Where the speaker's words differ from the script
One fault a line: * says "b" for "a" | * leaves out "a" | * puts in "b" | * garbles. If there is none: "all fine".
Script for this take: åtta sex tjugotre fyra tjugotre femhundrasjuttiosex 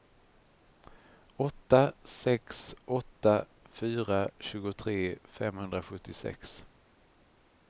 * says "åtta" for "tjugotre"